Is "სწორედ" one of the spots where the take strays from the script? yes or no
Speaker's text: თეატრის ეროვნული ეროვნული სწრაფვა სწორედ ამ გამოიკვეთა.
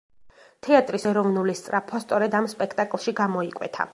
no